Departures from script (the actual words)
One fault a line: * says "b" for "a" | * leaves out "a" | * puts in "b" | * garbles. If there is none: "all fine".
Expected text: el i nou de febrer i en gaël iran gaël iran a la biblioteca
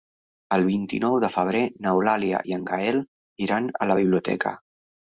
* puts in "vint"
* puts in "n'eulàlia"
* leaves out "gaël iran"